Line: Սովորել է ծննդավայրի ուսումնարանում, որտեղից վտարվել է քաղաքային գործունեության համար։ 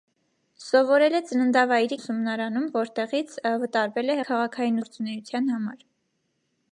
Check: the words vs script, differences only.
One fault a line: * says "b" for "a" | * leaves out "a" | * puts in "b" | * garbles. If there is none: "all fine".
all fine